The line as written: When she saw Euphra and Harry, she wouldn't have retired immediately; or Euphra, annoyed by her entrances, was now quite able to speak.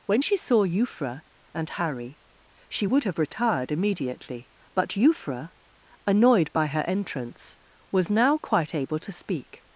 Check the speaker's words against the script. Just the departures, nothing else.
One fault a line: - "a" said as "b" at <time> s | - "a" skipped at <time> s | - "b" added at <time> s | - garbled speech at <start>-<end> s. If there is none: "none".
- "wouldn't" said as "would" at 2.8 s
- "or" said as "but" at 4.7 s
- "entrances" said as "entrance" at 6.9 s